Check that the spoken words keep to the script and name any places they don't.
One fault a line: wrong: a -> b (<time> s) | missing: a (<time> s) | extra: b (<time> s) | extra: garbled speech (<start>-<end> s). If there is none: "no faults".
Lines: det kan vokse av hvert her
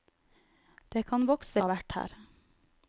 no faults